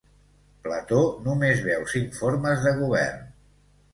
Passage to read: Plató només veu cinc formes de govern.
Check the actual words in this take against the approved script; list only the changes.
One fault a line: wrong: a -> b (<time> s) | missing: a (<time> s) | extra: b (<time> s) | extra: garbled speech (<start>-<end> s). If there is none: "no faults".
no faults